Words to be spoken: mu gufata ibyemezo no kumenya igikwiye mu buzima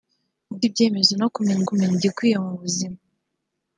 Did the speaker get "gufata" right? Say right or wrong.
wrong